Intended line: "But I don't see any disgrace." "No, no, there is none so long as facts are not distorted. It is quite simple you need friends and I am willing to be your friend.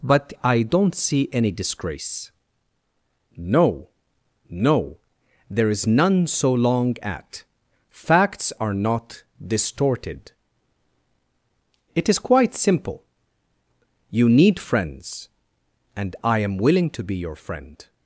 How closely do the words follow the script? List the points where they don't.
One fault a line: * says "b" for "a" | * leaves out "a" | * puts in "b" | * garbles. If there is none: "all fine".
* says "at" for "as"